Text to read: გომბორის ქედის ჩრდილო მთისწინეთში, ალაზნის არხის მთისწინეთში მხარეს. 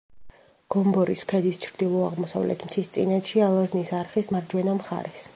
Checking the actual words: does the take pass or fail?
fail